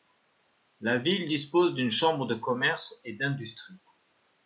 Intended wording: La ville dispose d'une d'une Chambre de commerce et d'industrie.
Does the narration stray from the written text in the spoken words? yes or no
yes